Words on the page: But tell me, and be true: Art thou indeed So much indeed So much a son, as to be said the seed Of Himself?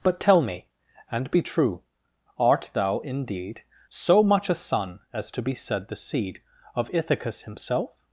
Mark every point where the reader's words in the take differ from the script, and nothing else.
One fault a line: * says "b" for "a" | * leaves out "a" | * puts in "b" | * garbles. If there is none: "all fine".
* leaves out "indeed So much"
* puts in "Ithacus"